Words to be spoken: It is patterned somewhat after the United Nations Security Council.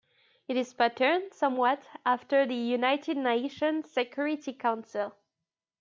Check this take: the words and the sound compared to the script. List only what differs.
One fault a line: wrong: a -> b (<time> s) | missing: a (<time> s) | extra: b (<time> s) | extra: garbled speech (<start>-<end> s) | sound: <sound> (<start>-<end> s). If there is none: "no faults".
no faults